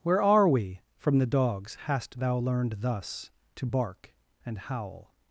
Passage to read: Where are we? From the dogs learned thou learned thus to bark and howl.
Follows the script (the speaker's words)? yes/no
no